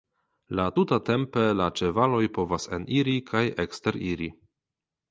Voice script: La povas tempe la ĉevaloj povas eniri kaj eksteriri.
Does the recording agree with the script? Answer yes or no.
no